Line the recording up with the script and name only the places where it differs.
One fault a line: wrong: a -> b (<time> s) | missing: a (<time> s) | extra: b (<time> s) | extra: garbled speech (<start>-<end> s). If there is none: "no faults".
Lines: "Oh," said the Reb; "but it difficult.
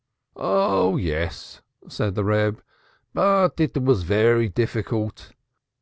extra: yes (1.0 s)
extra: was very (3.8 s)